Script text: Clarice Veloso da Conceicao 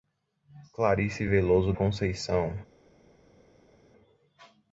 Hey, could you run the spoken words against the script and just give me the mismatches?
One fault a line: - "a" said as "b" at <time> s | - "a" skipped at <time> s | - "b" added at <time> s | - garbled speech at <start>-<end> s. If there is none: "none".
- "da" skipped at 1.7 s